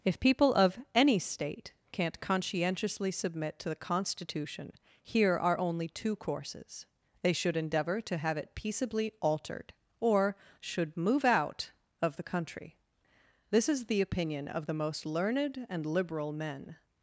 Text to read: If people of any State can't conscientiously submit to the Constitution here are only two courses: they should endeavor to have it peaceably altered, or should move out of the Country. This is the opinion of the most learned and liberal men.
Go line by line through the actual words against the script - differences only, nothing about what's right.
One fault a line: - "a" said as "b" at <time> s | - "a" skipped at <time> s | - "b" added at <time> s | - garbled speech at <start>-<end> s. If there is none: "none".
none